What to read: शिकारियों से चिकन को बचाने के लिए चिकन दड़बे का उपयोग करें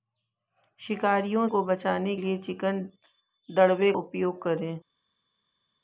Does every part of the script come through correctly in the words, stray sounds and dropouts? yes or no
no